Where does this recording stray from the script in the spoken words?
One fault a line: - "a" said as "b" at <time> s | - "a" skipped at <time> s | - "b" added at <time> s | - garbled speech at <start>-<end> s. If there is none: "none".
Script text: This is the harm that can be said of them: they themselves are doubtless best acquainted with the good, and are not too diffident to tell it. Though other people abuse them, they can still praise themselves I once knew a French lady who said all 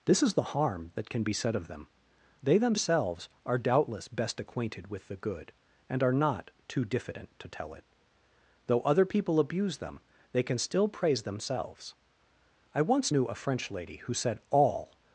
none